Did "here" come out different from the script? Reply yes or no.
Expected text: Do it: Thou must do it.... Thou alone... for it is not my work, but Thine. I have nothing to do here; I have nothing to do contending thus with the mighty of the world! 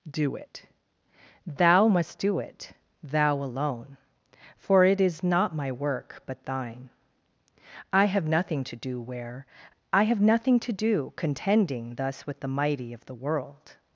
yes